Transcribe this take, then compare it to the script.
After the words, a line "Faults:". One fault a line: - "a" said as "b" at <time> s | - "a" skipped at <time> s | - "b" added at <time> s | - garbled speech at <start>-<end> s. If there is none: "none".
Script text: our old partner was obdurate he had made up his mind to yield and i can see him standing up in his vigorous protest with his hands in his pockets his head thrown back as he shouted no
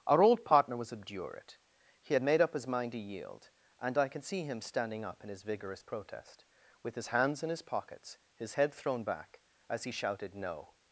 our old partner was obdurate he had made up his mind to yield and i can see him standing up in his vigorous protest with his hands in his pockets his head thrown back as he shouted no
Faults:
none